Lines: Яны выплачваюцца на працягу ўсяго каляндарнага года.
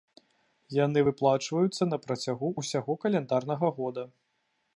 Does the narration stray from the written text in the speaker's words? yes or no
no